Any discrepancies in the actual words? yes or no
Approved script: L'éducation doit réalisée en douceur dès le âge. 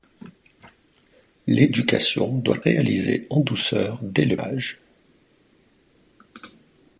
no